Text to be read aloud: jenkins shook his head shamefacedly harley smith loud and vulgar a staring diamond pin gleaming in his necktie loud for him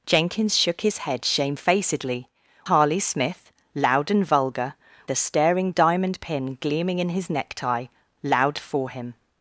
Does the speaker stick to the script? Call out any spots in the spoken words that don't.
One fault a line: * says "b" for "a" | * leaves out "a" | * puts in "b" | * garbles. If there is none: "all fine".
all fine